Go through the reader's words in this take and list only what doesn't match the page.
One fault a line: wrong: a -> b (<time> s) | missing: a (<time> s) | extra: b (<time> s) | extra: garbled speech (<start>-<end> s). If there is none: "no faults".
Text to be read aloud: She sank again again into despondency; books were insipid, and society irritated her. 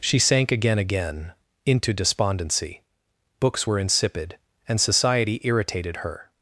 no faults